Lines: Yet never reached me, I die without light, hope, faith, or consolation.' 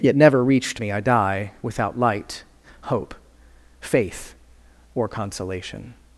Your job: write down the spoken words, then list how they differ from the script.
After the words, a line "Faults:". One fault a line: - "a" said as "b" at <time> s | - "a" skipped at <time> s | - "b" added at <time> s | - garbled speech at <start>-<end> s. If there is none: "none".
Yet never reached me, I die without light, hope, faith, or consolation.'
Faults:
none